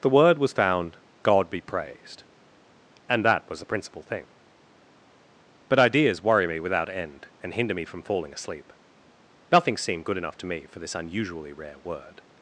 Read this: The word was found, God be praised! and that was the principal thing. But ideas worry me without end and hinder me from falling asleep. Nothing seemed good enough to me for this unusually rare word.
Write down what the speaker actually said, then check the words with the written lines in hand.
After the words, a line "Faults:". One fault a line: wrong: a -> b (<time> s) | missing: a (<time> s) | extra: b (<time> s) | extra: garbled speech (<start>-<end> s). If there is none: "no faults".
The word was found, God be praised! and that was the principal thing. But ideas worry me without end and hinder me from falling asleep. Nothing seemed good enough to me for this unusually rare word.
Faults:
no faults